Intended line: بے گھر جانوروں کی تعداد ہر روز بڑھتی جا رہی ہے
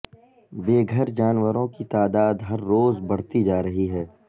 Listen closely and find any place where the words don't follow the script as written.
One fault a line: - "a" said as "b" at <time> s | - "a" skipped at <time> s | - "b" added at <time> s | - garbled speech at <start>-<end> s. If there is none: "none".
none